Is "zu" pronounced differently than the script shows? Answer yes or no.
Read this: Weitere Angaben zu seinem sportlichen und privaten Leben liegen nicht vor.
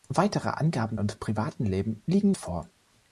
yes